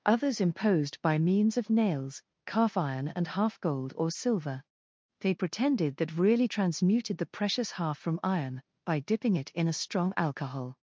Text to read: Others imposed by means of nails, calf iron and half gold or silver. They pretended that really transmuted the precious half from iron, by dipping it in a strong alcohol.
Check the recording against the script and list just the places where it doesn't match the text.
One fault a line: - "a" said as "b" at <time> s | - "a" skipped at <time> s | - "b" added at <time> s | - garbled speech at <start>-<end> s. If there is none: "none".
none